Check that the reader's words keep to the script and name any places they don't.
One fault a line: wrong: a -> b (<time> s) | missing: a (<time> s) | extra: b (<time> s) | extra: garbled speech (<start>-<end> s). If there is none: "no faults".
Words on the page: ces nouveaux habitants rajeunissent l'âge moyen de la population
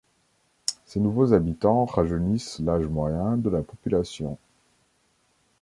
no faults